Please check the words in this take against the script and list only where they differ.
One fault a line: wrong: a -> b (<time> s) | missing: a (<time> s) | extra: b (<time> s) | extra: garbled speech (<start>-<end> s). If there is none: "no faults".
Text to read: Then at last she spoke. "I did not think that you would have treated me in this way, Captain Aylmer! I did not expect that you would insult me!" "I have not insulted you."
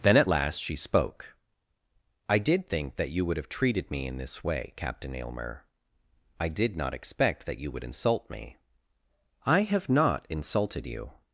missing: not (2.7 s)